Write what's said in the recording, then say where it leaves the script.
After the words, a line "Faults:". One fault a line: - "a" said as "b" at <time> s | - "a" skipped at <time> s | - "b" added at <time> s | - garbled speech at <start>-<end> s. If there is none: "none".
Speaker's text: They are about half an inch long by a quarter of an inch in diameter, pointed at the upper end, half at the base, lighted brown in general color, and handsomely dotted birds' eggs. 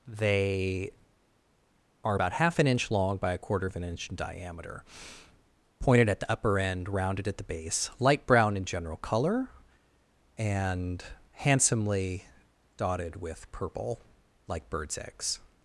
They are about half an inch long by a quarter of an inch in diameter, pointed at the upper end, rounded at the base, light brown in general color, and handsomely dotted with purple, like birds' eggs.
Faults:
- "half" said as "rounded" at 6.9 s
- "lighted" said as "light" at 8.0 s
- "with purple like" added at 13.2 s